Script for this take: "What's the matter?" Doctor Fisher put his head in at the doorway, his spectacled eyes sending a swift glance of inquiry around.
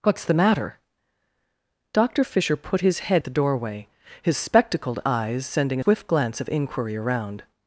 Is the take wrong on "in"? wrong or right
wrong